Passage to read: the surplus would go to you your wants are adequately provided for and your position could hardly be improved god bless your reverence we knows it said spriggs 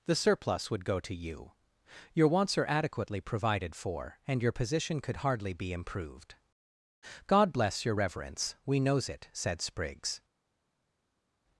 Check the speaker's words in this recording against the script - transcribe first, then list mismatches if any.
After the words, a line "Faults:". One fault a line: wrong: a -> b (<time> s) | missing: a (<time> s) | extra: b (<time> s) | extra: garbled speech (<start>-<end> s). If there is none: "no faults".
the surplus would go to you your wants are adequately provided for and your position could hardly be improved god bless your reverence we knows it said spriggs
Faults:
no faults